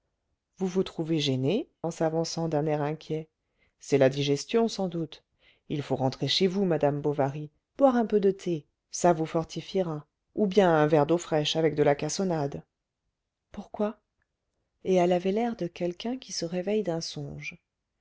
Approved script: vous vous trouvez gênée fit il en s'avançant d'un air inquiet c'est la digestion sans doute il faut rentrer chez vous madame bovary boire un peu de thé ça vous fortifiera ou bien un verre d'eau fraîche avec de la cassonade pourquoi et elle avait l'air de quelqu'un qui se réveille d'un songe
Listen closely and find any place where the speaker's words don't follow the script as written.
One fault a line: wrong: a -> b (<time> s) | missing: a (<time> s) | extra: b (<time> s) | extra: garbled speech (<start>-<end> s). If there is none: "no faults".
missing: fit il (1.7 s)